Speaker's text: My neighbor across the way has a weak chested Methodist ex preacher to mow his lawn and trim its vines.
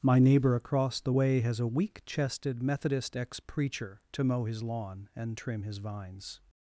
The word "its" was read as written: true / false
false